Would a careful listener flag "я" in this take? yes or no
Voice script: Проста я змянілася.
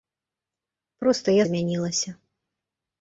no